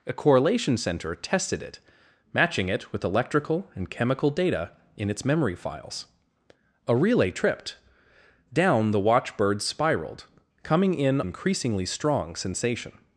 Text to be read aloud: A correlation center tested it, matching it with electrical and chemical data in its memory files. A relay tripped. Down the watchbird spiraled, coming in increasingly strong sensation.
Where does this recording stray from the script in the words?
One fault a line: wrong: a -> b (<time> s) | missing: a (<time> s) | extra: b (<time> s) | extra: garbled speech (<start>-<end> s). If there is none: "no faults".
no faults